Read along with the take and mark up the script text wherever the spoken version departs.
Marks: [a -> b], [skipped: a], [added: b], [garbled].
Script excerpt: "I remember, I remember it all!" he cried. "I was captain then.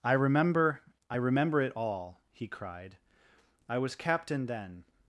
"I remember, I remember it all!" he cried. "I was captain then.